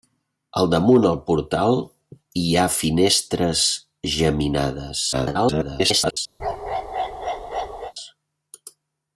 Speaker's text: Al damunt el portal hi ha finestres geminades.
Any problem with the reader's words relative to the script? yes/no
yes